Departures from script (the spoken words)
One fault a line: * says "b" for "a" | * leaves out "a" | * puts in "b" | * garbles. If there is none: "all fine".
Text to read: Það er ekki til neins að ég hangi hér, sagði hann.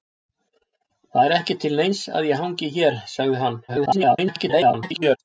* garbles